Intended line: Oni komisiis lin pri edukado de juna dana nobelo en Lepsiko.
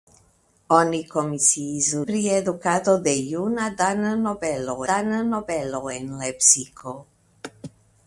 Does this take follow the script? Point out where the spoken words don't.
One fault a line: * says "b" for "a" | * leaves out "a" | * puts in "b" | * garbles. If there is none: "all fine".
* leaves out "lin"
* puts in "dana nobelo"